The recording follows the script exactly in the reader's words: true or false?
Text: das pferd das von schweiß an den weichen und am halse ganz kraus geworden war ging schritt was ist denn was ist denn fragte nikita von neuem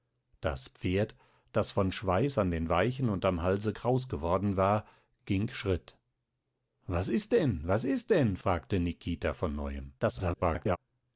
false